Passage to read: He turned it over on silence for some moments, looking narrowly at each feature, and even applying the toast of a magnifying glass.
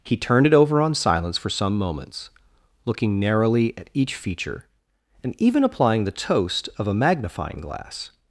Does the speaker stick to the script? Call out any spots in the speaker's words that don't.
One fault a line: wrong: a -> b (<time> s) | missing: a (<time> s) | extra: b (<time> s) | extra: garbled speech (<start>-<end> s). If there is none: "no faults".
no faults